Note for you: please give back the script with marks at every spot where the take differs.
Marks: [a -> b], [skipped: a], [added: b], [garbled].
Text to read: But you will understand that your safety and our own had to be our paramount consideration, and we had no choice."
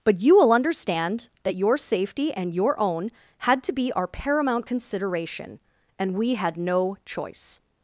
But you will understand that your safety and [our -> your] own had to be our paramount consideration, and we had no choice."